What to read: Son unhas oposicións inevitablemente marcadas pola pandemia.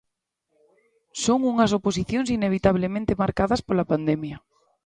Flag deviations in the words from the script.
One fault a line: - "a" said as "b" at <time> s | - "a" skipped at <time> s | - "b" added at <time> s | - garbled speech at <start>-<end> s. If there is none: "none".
none